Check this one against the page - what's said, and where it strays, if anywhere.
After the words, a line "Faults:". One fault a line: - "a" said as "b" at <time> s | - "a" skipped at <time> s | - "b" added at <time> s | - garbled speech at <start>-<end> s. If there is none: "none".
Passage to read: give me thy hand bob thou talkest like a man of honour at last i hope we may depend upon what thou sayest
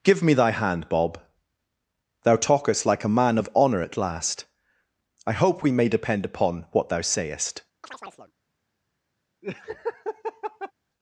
give me thy hand bob thou talkest like a man of honour at last i hope we may depend upon what thou sayest
Faults:
none